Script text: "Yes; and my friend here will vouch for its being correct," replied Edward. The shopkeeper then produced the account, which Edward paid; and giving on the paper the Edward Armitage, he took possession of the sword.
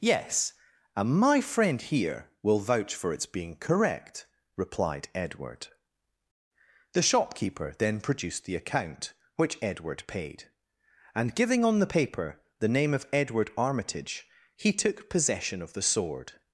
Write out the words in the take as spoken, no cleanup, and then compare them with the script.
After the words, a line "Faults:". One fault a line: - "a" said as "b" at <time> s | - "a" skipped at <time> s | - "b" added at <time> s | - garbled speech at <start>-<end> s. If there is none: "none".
"Yes; and my friend here will vouch for its being correct," replied Edward. The shopkeeper then produced the account, which Edward paid; and giving on the paper the name of Edward Armitage, he took possession of the sword.
Faults:
- "name of" added at 12.7 s